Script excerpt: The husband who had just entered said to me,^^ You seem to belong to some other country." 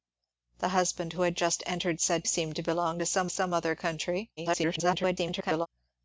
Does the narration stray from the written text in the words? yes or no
yes